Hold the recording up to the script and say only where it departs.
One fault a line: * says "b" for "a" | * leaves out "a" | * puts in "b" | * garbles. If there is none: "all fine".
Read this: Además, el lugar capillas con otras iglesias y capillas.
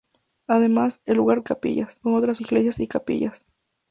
all fine